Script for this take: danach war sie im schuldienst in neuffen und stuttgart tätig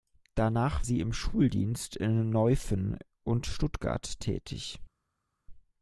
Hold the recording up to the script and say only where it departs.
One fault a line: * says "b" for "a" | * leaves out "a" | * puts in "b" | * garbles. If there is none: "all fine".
* leaves out "war"